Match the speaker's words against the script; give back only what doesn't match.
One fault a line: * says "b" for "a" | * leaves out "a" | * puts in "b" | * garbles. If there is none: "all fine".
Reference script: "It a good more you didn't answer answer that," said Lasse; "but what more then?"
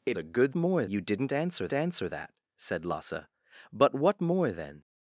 all fine